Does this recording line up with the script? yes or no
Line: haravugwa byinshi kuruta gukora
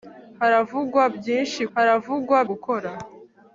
no